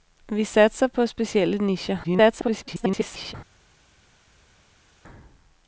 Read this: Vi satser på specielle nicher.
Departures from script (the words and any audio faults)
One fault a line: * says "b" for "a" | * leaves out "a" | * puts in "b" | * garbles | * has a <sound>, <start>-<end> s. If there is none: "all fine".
* garbles